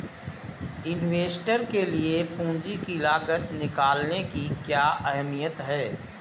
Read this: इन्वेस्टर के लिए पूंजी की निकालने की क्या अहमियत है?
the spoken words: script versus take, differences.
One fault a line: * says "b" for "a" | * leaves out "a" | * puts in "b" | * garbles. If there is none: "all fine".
* puts in "लागत"